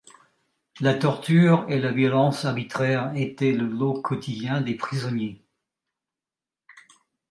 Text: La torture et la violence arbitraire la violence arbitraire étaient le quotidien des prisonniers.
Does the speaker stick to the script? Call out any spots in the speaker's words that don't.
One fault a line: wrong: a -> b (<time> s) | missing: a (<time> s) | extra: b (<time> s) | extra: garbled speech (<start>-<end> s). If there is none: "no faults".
missing: la violence arbitraire (3.1 s)
extra: lot (3.7 s)